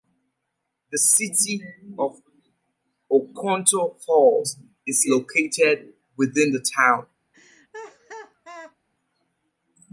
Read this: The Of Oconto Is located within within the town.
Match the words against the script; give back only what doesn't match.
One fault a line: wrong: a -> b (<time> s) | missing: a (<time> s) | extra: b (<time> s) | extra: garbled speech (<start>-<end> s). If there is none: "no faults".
extra: City (0.9 s)
extra: Falls (4.1 s)
missing: within (6.5 s)